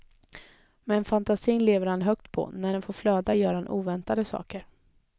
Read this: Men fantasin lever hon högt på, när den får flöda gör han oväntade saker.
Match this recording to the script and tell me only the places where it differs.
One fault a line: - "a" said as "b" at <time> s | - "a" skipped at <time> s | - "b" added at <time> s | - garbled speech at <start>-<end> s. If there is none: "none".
- "hon" said as "han" at 1.9 s